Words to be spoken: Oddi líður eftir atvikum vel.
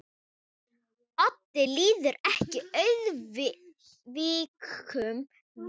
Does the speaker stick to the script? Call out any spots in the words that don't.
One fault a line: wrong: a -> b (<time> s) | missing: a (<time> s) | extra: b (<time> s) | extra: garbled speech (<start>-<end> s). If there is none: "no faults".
no faults